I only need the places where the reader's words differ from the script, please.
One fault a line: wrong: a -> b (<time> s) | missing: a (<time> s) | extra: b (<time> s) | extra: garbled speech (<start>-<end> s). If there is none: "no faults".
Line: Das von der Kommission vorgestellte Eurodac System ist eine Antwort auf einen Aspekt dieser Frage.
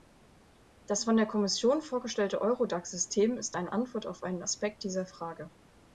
no faults